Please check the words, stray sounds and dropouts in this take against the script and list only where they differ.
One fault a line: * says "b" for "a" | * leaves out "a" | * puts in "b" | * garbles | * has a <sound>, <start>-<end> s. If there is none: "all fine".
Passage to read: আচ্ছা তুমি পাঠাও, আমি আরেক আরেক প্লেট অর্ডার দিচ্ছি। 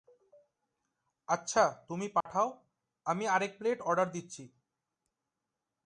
* has a dropout, 2.2-2.3 s
* leaves out "আরেক"